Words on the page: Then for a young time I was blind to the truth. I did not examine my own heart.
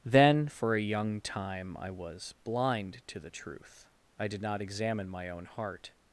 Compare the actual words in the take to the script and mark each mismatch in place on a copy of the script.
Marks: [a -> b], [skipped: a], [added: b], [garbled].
Then for a young time I was blind to the truth. I did not examine my own heart.